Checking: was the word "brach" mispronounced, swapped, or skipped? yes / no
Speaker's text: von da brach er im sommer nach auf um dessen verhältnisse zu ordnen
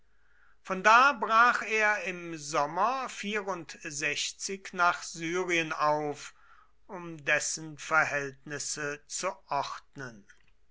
no